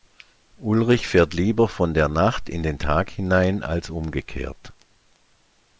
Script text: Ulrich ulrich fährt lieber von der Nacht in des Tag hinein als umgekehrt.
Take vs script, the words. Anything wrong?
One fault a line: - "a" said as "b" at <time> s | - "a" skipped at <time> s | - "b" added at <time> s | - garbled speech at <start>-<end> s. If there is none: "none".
- "ulrich" skipped at 1.1 s
- "des" said as "den" at 2.6 s